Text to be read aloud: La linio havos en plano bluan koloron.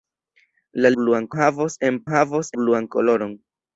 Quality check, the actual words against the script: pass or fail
fail